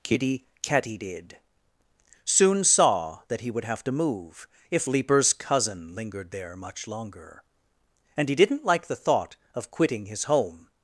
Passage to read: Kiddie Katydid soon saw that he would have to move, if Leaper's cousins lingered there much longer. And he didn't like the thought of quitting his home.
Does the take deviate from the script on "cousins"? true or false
true